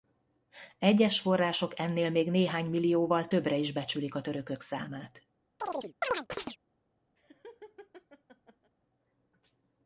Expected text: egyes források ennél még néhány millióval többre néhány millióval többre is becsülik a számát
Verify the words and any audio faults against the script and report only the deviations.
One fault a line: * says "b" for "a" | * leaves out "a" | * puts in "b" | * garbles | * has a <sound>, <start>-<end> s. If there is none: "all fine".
* leaves out "néhány millióval többre"
* puts in "törökök"
* has a chirp, 5.6-6.6 s
* has a laugh, 7.2-8.7 s